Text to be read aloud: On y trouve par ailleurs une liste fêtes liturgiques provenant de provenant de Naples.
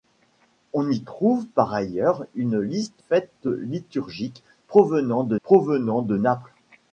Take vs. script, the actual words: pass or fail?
pass